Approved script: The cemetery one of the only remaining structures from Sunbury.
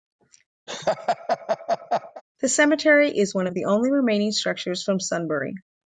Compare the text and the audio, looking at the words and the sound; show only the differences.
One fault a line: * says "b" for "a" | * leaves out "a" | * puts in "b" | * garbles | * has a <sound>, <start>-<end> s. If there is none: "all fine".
* has a laugh, 0.7-2.2 s
* puts in "is"